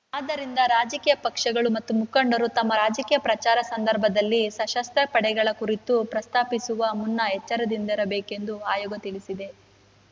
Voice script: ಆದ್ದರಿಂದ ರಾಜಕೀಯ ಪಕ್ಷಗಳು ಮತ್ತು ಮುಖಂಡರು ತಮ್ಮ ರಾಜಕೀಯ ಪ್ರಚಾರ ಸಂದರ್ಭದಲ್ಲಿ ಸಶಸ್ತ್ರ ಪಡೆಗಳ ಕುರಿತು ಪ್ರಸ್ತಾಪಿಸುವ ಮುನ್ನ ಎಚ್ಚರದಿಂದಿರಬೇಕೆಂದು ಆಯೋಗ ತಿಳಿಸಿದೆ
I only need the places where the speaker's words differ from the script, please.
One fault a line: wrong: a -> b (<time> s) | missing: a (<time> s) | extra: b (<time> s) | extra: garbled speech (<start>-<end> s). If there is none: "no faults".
no faults